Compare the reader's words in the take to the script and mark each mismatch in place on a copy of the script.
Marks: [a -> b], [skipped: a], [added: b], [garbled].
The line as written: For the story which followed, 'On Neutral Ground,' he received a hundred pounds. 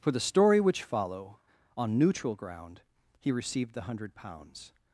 For the story which [followed, -> follow] 'On Neutral Ground,' he received [a -> the] hundred pounds.